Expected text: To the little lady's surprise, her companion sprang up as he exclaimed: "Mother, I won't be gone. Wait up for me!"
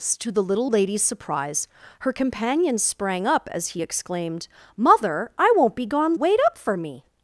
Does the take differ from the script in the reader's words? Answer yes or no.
no